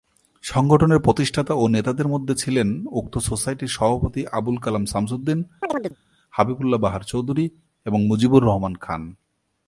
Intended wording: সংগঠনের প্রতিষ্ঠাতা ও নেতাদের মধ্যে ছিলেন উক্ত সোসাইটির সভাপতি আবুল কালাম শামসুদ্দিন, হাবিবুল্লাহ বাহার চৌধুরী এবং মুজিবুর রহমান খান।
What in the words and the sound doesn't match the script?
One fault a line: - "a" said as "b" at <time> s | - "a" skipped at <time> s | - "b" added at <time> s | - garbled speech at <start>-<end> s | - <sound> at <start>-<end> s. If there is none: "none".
- chirp at 5.6-6.0 s